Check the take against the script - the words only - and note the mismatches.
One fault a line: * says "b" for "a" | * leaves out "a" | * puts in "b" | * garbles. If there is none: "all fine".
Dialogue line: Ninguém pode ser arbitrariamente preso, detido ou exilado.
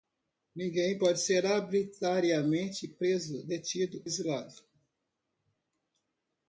* leaves out "ou"